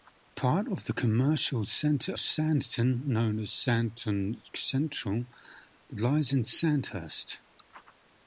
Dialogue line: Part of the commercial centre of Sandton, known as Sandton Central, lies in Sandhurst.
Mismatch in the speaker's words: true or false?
true